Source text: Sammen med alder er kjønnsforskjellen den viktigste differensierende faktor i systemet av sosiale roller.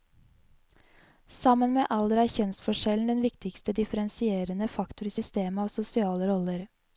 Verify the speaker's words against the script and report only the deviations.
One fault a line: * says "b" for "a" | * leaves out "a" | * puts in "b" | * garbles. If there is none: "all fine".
all fine